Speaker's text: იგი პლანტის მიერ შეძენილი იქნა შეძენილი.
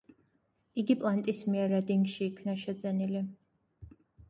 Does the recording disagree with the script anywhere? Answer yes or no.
yes